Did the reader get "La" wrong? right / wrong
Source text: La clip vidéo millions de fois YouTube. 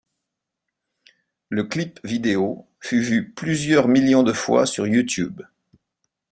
wrong